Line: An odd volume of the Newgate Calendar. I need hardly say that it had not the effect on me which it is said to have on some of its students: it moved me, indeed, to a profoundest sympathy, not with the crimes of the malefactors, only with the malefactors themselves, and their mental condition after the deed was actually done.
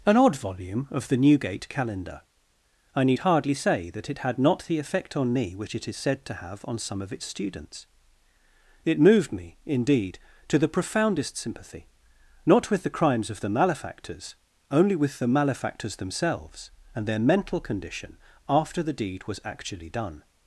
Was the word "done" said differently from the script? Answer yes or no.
no